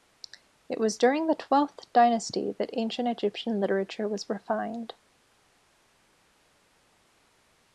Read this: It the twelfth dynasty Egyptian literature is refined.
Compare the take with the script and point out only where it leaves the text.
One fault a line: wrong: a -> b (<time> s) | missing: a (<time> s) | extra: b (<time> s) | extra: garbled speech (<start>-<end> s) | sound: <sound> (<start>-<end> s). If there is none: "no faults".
extra: was during (0.8 s)
extra: that Ancient (2.5 s)
wrong: is -> was (4.1 s)